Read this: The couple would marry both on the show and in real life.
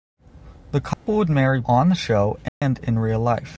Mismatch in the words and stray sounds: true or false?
true